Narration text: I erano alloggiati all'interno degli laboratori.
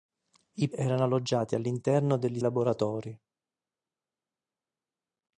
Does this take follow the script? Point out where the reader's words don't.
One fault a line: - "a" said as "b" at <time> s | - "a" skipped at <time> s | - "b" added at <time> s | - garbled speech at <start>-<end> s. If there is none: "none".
none